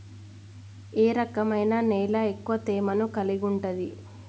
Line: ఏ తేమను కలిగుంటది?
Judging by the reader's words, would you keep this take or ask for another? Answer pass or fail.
fail